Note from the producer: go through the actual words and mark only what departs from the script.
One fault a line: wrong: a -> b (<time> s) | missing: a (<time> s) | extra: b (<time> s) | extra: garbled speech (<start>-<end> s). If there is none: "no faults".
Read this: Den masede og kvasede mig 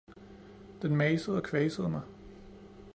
no faults